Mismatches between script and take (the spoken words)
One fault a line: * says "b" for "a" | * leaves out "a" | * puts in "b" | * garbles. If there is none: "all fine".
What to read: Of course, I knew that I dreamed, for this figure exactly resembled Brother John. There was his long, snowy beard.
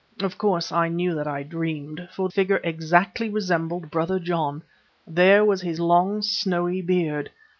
* leaves out "this"